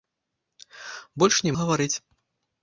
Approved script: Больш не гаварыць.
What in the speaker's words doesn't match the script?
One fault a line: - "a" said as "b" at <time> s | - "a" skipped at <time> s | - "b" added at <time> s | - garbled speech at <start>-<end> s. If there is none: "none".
none